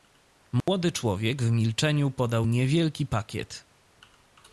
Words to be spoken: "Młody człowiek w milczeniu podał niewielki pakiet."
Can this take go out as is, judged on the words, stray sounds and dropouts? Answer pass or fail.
fail